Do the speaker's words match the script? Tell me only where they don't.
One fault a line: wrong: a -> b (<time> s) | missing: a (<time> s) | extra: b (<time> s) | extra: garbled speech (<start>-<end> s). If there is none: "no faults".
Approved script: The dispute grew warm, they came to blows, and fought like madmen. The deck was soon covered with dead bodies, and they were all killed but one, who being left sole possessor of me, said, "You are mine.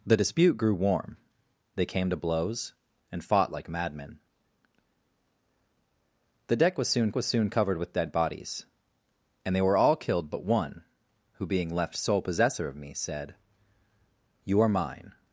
extra: was soon (7.1 s)